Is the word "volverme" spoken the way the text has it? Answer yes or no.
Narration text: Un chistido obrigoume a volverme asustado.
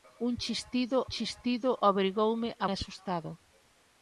no